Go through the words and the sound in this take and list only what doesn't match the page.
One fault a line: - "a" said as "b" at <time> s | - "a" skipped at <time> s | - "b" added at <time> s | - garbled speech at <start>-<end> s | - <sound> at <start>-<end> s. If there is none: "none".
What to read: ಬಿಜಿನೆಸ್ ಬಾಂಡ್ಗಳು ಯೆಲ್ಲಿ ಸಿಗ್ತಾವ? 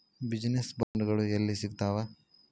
- dropout at 0.8-0.9 s